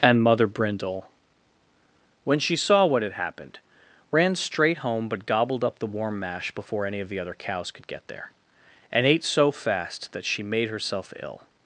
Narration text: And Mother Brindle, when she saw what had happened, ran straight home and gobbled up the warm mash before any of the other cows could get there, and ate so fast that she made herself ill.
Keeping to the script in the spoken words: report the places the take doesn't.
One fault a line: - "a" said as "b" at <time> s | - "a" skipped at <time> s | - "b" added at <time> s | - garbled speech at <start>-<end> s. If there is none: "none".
- "and" said as "but" at 5.1 s